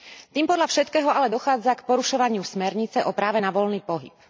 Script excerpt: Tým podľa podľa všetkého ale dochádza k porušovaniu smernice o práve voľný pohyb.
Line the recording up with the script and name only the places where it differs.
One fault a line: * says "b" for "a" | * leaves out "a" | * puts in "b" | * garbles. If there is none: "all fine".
* leaves out "podľa"
* puts in "na"